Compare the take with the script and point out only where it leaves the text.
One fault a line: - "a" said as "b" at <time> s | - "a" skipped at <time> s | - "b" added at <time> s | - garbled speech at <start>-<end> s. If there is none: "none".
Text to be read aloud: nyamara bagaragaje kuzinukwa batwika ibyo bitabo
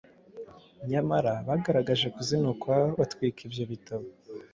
none